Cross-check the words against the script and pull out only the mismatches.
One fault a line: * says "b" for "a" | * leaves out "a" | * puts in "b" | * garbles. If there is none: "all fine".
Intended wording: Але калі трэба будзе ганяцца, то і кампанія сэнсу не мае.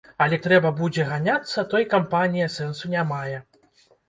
* leaves out "калі"